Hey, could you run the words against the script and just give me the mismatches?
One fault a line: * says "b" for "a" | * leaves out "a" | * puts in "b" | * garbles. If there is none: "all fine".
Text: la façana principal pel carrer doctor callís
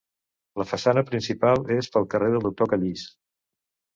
* puts in "és"
* puts in "del"